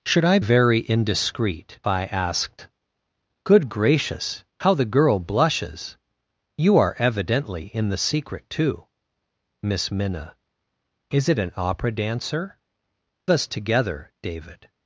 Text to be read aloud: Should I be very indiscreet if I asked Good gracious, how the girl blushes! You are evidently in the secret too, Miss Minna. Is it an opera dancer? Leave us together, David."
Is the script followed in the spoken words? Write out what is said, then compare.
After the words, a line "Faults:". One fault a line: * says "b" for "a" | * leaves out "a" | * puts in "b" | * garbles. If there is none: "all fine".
Should I very indiscreet I asked Good gracious, how the girl blushes! You are evidently in the secret too, Miss Minna. Is it an opera dancer? Us together, David."
Faults:
* leaves out "be"
* leaves out "if"
* leaves out "Leave"